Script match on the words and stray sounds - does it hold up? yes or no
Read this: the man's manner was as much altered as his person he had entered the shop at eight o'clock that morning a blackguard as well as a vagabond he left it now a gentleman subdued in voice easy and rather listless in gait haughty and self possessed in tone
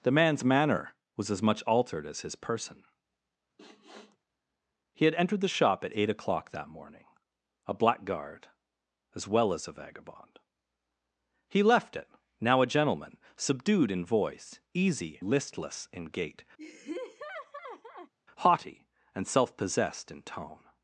no